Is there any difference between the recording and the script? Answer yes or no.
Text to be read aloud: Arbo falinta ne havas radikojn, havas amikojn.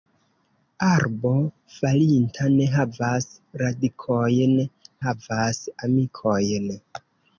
no